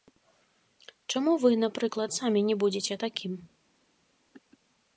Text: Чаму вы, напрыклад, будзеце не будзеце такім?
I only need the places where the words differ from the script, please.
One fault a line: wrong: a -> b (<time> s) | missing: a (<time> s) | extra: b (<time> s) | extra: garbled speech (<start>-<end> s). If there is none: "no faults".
wrong: будзеце -> самі (2.2 s)